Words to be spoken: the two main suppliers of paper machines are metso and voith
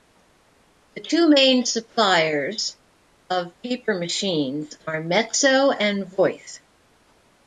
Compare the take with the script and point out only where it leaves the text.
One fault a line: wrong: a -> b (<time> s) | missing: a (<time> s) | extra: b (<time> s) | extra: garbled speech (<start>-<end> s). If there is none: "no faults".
no faults